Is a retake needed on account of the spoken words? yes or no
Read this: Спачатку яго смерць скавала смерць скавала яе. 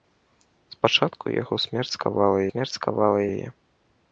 no